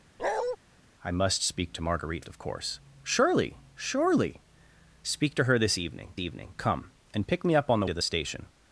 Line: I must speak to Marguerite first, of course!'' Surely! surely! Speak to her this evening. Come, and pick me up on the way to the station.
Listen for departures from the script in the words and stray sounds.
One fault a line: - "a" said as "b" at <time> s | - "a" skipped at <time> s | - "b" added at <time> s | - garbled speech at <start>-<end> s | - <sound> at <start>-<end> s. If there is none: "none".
- bark at 0.2-0.6 s
- "first" skipped at 2.3 s
- "evening" added at 6.2 s
- "way" skipped at 7.9 s